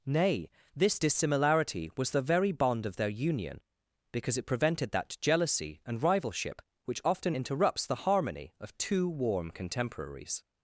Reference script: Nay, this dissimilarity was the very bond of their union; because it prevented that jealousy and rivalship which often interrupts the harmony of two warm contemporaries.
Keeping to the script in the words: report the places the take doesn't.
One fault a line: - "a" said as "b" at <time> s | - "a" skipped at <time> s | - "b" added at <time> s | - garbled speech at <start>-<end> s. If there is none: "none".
none